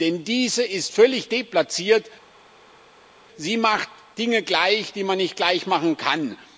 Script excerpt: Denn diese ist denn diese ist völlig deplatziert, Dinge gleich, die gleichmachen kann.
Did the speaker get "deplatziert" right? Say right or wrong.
wrong